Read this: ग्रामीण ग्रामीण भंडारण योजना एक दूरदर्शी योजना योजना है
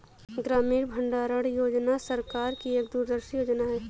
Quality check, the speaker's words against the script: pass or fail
fail